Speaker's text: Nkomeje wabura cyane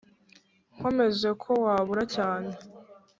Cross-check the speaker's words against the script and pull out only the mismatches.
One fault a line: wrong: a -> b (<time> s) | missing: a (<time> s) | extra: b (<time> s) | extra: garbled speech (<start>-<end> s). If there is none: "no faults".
extra: ko (1.4 s)